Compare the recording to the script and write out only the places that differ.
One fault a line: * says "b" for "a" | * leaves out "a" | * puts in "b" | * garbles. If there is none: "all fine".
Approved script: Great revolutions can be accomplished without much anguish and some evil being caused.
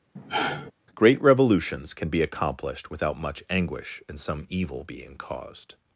all fine